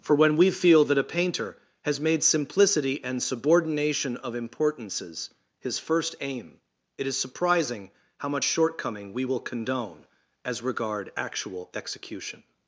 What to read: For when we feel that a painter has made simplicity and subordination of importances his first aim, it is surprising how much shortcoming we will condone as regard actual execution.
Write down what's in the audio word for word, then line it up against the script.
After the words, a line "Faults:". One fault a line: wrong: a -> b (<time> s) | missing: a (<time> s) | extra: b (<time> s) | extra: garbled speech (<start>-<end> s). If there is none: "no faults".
For when we feel that a painter has made simplicity and subordination of importances his first aim, it is surprising how much shortcoming we will condone as regard actual execution.
Faults:
no faults